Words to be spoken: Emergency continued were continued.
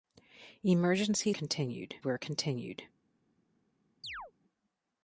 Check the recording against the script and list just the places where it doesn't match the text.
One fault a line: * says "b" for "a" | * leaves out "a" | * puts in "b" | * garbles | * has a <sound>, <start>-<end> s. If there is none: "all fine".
* has a chirp, 4.0-4.3 s